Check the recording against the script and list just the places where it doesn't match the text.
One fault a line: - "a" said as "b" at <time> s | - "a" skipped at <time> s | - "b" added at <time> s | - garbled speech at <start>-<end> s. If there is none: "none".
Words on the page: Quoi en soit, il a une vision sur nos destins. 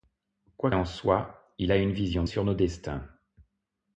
none